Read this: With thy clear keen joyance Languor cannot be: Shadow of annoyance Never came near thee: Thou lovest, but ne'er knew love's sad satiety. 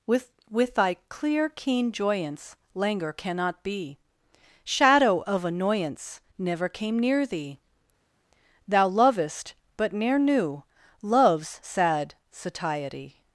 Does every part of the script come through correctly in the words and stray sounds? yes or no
no